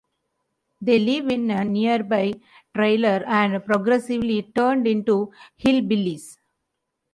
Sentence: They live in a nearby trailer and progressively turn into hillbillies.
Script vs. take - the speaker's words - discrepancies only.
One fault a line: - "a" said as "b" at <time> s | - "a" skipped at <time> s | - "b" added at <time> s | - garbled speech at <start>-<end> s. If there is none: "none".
none